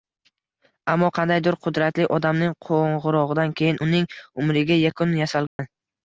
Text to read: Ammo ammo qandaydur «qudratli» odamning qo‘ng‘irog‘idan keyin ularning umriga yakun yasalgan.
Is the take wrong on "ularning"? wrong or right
wrong